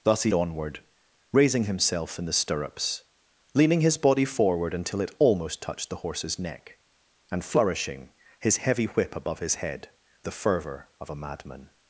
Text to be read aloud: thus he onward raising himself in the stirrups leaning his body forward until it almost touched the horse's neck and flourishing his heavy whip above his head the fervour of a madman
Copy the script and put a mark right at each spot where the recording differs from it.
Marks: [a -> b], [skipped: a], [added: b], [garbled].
thus he onward raising himself in the stirrups leaning his body forward until it almost touched the horse's neck and flourishing his heavy whip above his head the fervour of a madman